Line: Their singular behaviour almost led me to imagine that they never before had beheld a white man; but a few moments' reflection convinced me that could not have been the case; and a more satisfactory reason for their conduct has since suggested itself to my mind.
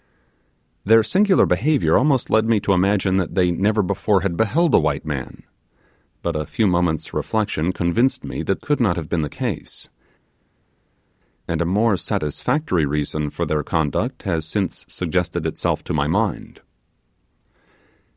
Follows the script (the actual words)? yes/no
yes